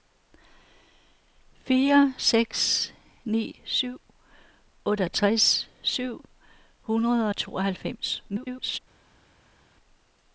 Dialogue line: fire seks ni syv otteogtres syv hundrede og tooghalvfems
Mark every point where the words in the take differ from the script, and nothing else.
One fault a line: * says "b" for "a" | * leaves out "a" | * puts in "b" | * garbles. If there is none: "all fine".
* garbles